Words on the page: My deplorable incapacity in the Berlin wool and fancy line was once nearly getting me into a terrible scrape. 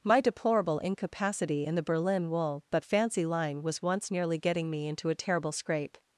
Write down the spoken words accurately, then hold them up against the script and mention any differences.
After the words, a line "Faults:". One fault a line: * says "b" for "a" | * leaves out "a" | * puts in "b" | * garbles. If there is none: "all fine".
My deplorable incapacity in the Berlin wool but fancy line was once nearly getting me into a terrible scrape.
Faults:
* says "but" for "and"